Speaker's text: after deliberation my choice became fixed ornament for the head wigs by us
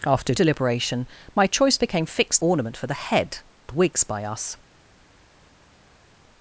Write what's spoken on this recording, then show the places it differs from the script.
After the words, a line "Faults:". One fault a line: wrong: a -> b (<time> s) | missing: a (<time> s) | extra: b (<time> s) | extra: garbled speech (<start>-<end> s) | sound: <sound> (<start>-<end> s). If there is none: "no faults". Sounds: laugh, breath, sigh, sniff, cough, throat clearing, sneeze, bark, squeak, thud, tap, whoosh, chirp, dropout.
after deliberation my choice became fixed ornament for the head wigs by us
Faults:
no faults